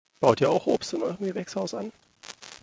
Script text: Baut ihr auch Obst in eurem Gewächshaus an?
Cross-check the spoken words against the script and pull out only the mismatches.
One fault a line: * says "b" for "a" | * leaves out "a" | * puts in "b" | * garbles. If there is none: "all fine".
all fine